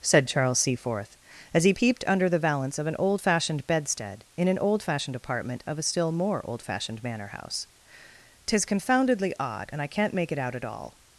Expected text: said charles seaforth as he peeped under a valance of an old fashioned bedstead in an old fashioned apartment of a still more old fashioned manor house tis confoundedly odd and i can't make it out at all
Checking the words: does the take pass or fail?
fail